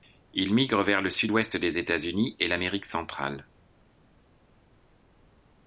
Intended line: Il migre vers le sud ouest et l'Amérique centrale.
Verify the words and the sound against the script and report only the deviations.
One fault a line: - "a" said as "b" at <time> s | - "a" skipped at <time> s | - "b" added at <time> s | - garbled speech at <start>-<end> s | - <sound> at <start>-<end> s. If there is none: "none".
- "des États Unis" added at 1.6 s